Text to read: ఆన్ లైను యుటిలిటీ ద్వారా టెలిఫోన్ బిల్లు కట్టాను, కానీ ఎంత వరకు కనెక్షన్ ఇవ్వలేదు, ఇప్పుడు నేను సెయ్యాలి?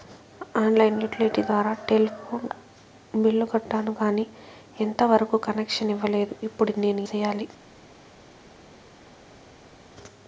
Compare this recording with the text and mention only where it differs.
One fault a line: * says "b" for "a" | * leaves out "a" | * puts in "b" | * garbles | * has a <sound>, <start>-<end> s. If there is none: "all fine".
all fine